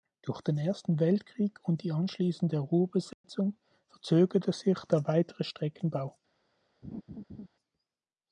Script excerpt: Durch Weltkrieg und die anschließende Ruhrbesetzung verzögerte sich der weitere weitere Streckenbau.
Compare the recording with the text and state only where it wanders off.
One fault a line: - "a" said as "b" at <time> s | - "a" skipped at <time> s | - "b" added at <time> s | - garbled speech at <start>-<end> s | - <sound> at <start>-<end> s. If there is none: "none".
- "den Ersten" added at 0.4 s
- dropout at 3.1-3.2 s
- "weitere" skipped at 5.4 s
- laugh at 6.8-7.5 s